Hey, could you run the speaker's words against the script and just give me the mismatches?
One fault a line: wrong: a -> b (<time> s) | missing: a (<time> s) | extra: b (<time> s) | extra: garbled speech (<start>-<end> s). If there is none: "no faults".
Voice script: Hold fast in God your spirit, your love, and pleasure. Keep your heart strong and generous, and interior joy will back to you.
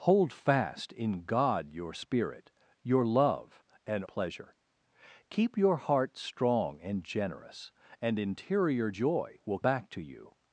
no faults